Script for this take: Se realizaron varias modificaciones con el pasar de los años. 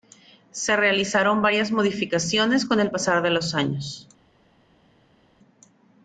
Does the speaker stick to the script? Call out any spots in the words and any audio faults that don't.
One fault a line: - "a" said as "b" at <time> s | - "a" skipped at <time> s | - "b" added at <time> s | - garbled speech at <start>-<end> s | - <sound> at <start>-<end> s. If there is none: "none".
none